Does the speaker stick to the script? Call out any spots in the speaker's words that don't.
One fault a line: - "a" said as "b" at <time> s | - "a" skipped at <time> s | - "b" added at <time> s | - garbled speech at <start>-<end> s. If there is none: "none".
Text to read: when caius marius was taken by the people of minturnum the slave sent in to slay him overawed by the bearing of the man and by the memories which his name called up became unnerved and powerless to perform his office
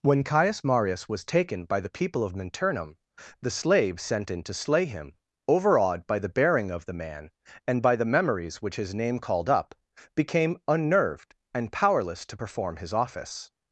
none